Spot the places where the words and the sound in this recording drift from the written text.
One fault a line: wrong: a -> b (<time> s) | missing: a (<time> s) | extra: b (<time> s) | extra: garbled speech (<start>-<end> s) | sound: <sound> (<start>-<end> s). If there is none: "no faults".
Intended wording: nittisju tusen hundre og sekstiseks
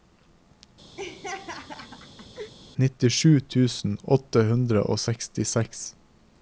sound: laugh (1.0-2.5 s)
extra: åtte (4.2 s)